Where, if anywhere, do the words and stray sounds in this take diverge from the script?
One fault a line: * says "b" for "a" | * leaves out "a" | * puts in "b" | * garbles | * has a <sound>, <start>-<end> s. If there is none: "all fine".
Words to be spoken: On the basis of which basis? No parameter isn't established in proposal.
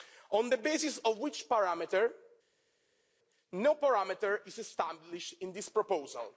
* says "parameter" for "basis"
* says "is" for "isn't"
* puts in "this"